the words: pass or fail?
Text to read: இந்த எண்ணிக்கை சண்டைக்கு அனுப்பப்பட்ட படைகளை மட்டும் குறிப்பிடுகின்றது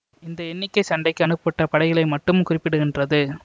pass